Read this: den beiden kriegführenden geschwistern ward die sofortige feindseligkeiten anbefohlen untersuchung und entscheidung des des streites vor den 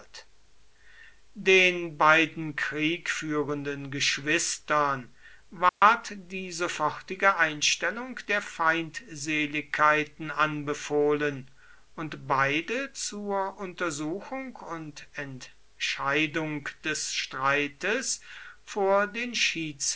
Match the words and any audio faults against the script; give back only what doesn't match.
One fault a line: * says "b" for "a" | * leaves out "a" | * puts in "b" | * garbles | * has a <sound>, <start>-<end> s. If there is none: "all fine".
* has a dropout, 5.7-5.8 s
* puts in "einstellung der"
* puts in "und beide zur"
* leaves out "des"